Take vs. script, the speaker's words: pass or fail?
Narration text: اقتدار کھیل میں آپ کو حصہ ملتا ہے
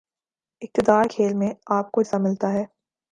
pass